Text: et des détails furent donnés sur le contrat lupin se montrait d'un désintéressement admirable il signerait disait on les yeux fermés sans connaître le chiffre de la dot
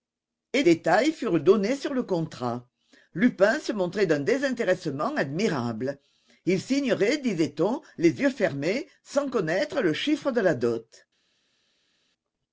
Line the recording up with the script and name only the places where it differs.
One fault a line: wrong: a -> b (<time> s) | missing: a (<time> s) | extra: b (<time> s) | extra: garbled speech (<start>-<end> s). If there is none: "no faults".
missing: des (0.6 s)